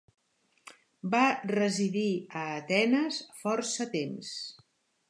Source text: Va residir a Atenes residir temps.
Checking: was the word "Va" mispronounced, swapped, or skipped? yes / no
no